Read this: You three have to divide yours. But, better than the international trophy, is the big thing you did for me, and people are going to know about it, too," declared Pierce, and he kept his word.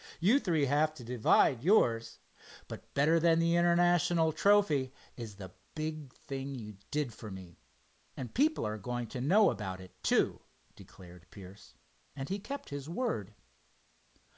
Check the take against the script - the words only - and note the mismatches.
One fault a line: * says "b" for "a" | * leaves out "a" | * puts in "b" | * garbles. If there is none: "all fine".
all fine